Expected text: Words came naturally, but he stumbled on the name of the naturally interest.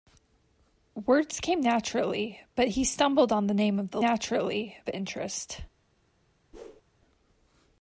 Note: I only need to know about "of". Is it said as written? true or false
true